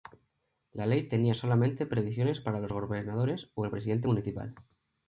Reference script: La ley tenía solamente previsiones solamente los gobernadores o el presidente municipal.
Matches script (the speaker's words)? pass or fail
fail